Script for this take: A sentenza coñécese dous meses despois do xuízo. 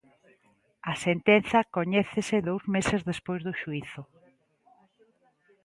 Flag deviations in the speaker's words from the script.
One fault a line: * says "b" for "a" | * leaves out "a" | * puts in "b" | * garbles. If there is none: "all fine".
all fine